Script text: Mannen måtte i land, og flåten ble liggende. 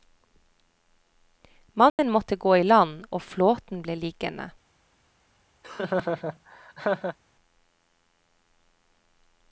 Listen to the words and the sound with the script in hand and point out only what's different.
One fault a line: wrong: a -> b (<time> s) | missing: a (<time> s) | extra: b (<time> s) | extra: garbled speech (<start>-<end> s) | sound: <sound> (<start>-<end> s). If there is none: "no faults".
sound: dropout (1.9-2.0 s)
extra: gå (2.4 s)
sound: laugh (5.6-7.2 s)